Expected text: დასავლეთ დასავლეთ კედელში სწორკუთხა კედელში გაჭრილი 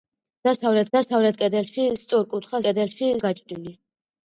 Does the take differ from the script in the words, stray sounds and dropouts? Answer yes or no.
no